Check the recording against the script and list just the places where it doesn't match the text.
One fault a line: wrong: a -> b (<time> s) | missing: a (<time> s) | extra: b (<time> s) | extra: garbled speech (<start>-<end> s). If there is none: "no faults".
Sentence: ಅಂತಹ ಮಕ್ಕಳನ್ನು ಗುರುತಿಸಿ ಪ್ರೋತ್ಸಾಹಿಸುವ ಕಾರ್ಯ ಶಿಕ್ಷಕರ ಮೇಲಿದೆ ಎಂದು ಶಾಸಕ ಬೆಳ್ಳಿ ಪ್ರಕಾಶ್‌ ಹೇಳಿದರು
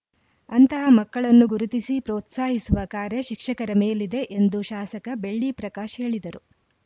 no faults